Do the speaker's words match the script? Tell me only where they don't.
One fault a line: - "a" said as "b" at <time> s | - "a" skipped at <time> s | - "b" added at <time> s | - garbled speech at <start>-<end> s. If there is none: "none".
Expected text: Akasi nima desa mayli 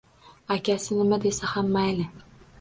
- "ham" added at 1.5 s